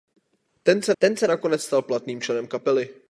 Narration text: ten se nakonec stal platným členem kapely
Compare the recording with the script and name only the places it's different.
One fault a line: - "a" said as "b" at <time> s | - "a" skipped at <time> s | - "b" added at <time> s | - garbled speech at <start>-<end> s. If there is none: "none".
- "ten se" added at 1.0 s